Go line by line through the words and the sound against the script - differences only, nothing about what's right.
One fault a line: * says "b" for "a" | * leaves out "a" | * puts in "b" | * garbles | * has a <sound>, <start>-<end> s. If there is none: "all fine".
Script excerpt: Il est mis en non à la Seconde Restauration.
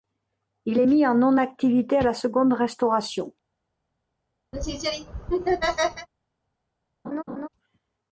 * puts in "activité"
* has a laugh, 4.5-6.1 s
* has a laugh, 7.0-7.5 s